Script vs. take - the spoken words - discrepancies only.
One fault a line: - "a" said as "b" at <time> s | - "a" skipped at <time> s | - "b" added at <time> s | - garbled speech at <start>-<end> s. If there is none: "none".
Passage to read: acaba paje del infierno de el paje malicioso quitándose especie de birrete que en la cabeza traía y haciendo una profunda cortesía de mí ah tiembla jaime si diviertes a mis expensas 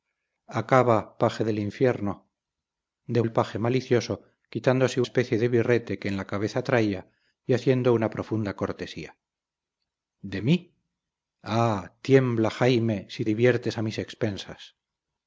none